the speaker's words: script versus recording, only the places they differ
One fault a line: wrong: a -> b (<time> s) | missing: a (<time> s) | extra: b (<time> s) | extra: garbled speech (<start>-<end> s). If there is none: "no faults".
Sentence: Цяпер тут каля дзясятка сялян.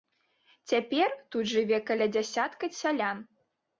extra: жыве (1.5 s)